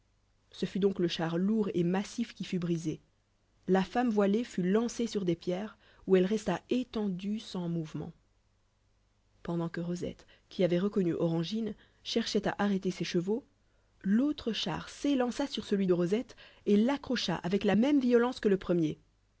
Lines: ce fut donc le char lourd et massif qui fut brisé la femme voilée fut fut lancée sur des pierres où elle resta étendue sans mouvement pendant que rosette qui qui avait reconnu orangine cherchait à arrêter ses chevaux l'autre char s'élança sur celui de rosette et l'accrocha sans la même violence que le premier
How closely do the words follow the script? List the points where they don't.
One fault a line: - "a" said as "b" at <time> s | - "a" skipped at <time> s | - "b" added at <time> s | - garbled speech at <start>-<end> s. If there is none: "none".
- "fut" skipped at 4.6 s
- "qui" skipped at 10.6 s
- "sans" said as "avec" at 17.4 s